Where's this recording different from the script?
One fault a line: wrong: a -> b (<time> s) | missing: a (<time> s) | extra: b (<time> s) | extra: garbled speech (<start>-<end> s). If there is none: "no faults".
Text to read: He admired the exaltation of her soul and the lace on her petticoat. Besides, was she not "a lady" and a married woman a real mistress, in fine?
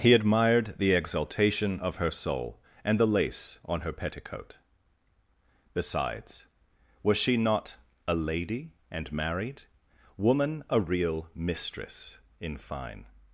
missing: a (9.1 s)